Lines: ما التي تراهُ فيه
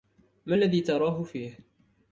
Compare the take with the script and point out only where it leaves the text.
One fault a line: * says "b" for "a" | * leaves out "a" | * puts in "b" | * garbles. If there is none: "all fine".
* says "الذي" for "التي"